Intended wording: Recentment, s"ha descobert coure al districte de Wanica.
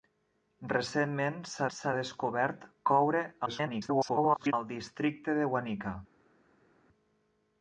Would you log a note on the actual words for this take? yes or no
yes